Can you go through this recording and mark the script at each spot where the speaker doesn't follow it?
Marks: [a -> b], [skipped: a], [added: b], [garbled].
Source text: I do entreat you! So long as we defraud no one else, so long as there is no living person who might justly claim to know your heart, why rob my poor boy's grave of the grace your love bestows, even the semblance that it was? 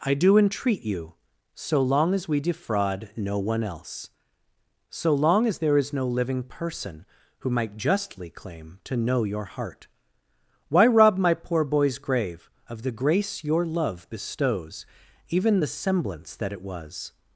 I do entreat you! So long as we defraud no one else, so long as there is no living person who might justly claim to know your heart, why rob my poor boy's grave of the grace your love bestows, even the semblance that it was?